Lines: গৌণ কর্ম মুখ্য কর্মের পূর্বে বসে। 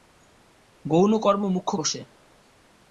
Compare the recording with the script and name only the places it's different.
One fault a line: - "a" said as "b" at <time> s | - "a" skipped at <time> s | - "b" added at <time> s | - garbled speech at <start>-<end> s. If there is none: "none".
- "কর্মের পূর্বে" skipped at 1.7 s